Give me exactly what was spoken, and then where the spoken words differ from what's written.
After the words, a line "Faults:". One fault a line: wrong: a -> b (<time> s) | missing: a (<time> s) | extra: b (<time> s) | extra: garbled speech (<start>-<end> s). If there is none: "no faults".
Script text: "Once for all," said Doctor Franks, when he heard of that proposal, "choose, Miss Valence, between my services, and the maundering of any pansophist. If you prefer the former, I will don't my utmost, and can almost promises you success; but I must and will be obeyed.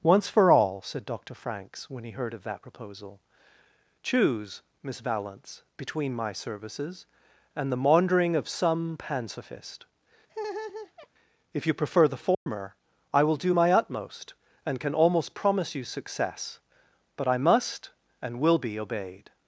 "Once for all," said Doctor Franks, when he heard of that proposal, "choose, Miss Valence, between my services, and the maundering of some pansophist. If you prefer the former, I will do my utmost, and can almost promise you success; but I must and will be obeyed.
Faults:
wrong: any -> some (8.5 s)
wrong: don't -> do (13.4 s)
wrong: promises -> promise (15.3 s)